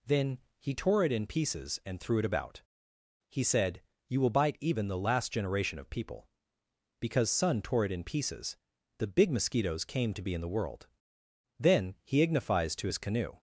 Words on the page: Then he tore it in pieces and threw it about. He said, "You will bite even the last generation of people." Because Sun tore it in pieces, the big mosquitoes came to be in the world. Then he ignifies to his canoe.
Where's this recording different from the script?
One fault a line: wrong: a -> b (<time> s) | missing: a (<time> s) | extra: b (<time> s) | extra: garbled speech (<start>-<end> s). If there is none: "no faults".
no faults